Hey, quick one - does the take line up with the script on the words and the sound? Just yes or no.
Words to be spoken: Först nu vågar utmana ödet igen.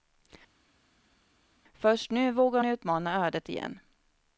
yes